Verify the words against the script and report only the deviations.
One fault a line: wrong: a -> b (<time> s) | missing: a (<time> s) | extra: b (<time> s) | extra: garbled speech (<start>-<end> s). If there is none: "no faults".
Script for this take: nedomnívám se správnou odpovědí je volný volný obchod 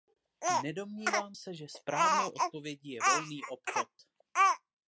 extra: že (1.5 s)
missing: volný (3.4 s)